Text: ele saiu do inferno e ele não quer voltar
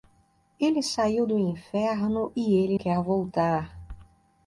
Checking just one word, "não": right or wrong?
wrong